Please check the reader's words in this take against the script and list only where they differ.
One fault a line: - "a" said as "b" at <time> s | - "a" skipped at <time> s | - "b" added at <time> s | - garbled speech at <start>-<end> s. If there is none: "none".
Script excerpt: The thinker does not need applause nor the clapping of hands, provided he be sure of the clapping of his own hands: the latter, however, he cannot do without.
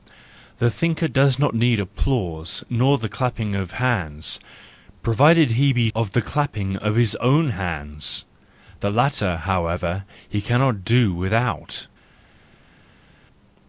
- "sure" skipped at 5.9 s